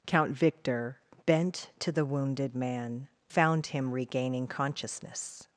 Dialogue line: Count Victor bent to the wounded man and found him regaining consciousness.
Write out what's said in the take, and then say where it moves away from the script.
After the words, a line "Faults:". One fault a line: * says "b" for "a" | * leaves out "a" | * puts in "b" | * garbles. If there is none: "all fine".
Count Victor bent to the wounded man found him regaining consciousness.
Faults:
* leaves out "and"